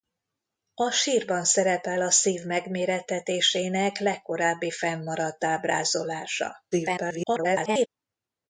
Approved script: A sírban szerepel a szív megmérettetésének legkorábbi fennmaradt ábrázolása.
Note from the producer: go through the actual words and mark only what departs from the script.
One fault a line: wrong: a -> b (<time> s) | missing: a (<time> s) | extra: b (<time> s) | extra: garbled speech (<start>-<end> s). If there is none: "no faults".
extra: garbled speech (6.7-7.9 s)